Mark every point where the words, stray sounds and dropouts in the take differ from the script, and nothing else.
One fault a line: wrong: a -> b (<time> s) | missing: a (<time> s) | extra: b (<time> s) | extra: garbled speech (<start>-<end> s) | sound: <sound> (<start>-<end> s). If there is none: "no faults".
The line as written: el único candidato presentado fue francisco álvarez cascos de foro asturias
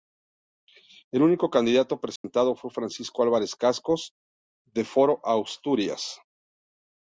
sound: dropout (2.2-2.2 s)